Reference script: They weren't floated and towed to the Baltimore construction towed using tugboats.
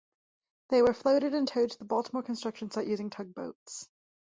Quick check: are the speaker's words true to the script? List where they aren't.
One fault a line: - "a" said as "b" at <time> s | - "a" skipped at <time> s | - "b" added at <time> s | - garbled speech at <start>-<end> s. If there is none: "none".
- "weren't" said as "were" at 0.8 s
- "towed" said as "site" at 2.7 s